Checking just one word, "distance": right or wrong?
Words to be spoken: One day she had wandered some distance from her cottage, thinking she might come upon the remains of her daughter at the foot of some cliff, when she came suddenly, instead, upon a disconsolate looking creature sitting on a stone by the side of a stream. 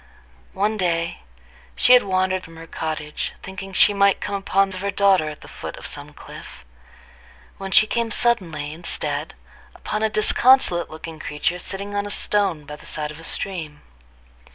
wrong